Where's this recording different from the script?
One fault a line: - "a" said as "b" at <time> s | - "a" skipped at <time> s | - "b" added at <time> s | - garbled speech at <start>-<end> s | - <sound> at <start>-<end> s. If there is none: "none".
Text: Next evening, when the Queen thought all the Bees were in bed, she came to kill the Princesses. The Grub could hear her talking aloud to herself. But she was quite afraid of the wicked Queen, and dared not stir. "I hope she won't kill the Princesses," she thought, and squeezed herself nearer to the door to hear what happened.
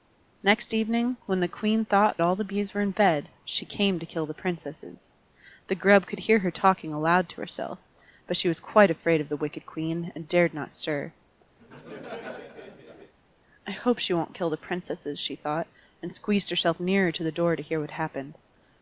- laugh at 11.6-13.1 s